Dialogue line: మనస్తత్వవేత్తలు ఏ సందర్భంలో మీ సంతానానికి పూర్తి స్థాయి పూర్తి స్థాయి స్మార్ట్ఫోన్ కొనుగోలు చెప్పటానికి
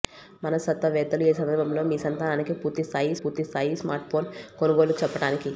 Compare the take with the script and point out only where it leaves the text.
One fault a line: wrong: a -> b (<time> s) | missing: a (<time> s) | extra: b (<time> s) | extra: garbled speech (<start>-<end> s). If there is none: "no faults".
no faults